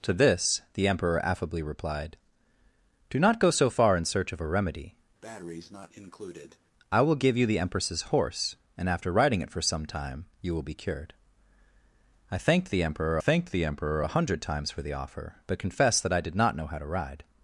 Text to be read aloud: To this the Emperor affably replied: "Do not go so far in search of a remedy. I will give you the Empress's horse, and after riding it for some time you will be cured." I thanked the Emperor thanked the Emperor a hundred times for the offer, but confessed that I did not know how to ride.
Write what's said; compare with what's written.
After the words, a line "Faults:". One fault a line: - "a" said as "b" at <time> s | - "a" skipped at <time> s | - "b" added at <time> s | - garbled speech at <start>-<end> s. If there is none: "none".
To this the Emperor affably replied: "Do not go so far in search of a remedy. I will give you the Empress's horse, and after riding it for some time you will be cured." I thanked the Emperor thanked the Emperor a hundred times for the offer, but confessed that I did not know how to ride.
Faults:
none